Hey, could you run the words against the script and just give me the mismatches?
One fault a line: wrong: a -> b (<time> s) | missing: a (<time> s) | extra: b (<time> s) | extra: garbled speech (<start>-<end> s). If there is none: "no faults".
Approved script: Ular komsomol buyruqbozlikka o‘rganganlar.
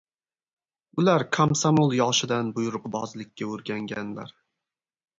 extra: yoshidan (2.0 s)